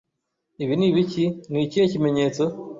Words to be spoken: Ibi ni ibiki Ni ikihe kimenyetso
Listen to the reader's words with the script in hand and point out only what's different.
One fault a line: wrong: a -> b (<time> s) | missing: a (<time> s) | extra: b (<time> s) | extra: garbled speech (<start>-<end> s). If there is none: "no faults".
no faults